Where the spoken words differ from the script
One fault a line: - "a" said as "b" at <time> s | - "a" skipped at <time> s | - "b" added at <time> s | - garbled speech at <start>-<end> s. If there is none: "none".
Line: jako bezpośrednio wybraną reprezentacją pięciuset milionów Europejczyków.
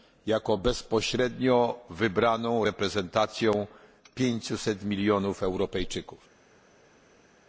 none